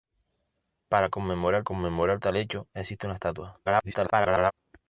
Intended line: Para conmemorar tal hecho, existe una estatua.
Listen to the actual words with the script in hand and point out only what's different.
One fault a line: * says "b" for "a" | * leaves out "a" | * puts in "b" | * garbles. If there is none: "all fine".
* puts in "conmemorar"
* garbles